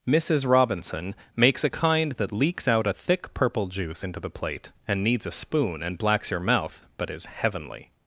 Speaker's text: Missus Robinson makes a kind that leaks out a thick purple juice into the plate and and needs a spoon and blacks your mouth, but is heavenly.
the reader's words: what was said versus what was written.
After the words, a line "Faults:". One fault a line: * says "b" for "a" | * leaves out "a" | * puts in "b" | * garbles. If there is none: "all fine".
Missus Robinson makes a kind that leaks out a thick purple juice into the plate and needs a spoon and blacks your mouth, but is heavenly.
Faults:
* leaves out "and"